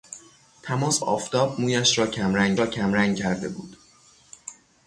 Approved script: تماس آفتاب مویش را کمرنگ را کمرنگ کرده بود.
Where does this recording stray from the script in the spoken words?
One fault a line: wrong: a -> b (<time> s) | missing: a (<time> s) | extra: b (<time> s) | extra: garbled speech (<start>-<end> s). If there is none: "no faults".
no faults